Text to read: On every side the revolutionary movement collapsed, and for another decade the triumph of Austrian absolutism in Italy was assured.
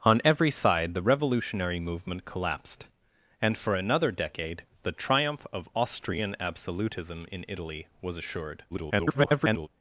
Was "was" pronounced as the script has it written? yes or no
yes